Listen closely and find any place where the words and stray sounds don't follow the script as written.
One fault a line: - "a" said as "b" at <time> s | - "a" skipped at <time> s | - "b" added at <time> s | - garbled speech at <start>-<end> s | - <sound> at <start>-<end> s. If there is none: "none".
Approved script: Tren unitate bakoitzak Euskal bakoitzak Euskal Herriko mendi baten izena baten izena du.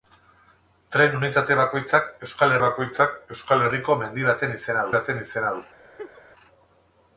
- laugh at 6.0-6.2 s